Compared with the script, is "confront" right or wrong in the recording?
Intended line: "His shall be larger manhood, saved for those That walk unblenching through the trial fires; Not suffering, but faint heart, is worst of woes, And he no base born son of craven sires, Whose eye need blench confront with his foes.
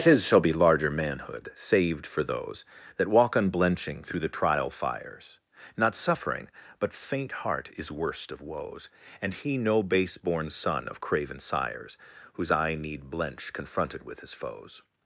wrong